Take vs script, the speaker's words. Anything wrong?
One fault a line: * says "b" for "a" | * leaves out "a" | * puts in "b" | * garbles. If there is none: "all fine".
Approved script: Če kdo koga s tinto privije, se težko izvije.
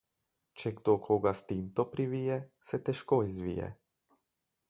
all fine